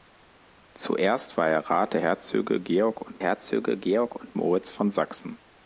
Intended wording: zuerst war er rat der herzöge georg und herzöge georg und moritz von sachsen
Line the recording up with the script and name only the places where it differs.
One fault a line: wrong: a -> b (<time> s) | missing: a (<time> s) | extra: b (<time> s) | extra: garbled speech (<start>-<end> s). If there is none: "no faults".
no faults